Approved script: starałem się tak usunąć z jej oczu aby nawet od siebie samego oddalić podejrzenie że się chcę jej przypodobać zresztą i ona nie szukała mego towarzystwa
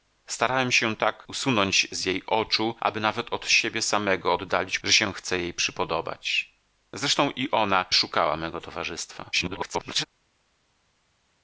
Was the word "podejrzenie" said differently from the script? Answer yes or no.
yes